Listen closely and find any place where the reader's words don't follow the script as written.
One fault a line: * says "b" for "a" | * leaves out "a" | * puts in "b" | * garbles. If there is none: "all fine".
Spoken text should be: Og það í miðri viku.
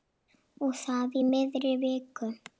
all fine